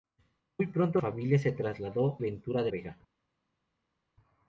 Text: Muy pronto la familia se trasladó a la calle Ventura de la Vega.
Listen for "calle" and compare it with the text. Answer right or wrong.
wrong